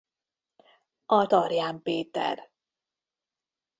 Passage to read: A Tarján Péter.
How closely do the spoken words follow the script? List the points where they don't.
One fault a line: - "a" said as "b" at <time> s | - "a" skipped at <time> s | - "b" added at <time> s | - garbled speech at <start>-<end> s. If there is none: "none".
none